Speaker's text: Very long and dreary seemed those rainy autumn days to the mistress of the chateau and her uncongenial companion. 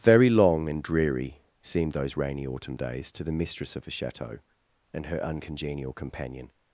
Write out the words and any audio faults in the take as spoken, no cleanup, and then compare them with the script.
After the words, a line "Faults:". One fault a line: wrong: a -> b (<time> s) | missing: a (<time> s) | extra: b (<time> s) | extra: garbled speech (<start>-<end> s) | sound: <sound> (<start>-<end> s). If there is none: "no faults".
Very long and dreary seemed those rainy autumn days to the mistress of the chateau and her uncongenial companion.
Faults:
no faults